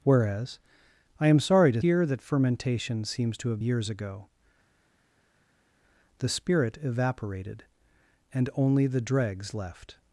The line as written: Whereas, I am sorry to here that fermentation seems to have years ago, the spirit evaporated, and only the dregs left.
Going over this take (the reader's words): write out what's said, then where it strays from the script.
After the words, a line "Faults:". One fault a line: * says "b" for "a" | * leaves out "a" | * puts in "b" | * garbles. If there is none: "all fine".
Whereas, I am sorry to here that fermentation seems to have years ago, the spirit evaporated, and only the dregs left.
Faults:
all fine